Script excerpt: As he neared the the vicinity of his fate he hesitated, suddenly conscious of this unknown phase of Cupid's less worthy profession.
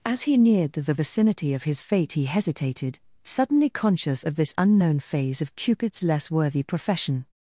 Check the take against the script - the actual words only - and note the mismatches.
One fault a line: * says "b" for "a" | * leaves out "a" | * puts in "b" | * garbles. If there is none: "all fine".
all fine